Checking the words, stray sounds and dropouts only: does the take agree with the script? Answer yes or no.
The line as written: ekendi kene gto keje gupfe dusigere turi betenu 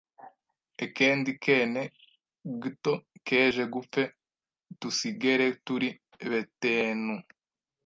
yes